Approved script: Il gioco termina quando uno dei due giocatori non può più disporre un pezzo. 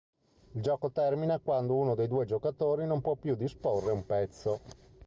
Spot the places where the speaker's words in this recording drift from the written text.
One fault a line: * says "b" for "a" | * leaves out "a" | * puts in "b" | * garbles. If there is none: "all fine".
all fine